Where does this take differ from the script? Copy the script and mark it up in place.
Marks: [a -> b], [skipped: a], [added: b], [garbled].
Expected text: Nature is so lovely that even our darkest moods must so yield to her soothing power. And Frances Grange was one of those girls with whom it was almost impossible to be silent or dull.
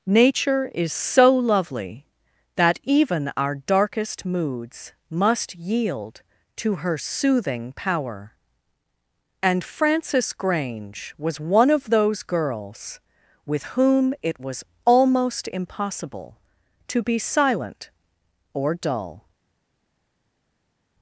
Nature is so lovely that even our darkest moods must [skipped: so] yield to her soothing power. And Frances Grange was one of those girls with whom it was almost impossible to be silent or dull.